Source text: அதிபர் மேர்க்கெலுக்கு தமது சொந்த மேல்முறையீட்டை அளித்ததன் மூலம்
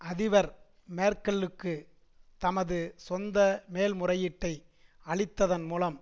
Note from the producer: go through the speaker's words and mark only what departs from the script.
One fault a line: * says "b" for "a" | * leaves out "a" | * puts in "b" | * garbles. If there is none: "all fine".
all fine